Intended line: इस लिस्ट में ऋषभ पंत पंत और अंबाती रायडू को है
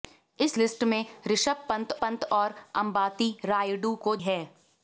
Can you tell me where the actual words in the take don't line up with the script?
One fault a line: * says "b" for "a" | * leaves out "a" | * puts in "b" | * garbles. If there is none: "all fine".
all fine